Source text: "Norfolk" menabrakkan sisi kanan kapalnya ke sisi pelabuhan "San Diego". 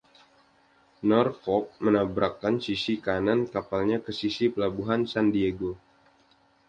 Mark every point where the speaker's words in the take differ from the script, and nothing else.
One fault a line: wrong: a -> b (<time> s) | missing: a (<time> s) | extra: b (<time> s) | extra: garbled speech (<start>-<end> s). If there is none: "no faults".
no faults